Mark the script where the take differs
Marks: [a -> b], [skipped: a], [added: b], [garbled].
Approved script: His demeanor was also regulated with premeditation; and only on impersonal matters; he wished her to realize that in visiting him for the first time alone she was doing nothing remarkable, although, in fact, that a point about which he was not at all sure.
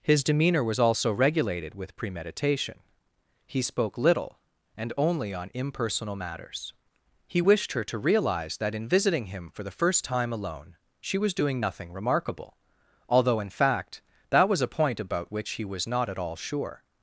His demeanor was also regulated with premeditation; [added: he spoke little] and only on impersonal matters; he wished her to realize that in visiting him for the first time alone she was doing nothing remarkable, although, in fact, that [added: was] a point about which he was not at all sure.